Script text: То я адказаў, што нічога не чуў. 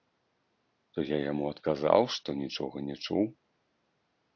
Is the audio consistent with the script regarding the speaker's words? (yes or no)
no